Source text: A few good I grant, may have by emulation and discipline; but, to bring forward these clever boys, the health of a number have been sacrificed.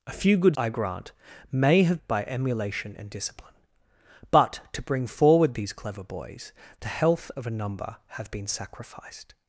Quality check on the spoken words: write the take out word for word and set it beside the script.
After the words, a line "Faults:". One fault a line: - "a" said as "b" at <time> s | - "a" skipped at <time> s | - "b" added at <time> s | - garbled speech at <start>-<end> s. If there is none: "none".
A few good I grant, may have by emulation and discipline; but, to bring forward these clever boys, the health of a number have been sacrificed.
Faults:
none